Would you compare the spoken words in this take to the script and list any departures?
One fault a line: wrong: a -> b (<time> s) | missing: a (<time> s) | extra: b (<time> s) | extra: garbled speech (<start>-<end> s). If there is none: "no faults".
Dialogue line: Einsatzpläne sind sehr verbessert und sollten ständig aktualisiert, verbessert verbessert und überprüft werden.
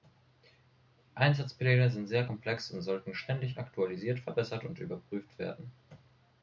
wrong: verbessert -> komplex (2.2 s)
missing: verbessert (4.6 s)